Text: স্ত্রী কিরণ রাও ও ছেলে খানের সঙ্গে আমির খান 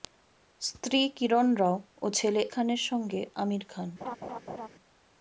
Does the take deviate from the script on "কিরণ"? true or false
false